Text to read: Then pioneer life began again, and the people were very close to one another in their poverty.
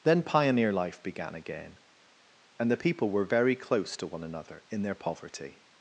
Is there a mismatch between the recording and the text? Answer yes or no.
no